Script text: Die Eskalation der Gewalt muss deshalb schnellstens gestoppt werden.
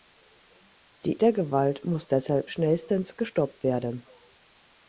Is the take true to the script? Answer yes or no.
no